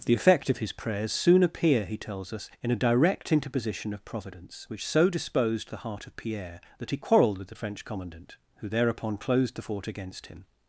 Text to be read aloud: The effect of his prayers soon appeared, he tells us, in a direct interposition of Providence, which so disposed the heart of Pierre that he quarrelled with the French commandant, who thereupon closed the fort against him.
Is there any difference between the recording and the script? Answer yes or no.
yes